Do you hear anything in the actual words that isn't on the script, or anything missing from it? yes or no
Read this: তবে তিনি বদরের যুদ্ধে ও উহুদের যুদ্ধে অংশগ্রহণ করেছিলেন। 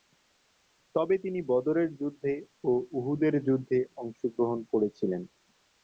no